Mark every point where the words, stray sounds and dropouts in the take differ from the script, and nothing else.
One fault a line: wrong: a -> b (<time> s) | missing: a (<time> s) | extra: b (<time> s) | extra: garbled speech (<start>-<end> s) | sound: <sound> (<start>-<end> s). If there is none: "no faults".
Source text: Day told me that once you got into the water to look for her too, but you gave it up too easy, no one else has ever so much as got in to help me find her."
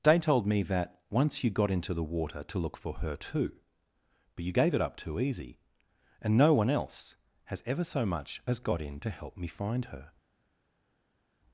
extra: and (6.2 s)